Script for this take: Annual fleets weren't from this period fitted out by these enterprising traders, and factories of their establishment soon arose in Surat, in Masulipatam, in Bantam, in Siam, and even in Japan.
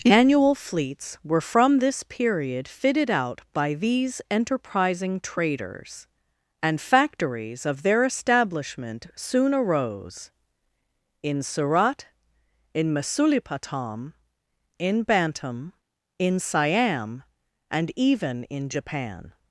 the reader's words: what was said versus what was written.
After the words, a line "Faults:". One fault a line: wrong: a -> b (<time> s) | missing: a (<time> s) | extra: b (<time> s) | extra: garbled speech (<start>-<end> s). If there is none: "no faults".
Annual fleets were from this period fitted out by these enterprising traders, and factories of their establishment soon arose in Surat, in Masulipatam, in Bantam, in Siam, and even in Japan.
Faults:
wrong: weren't -> were (1.2 s)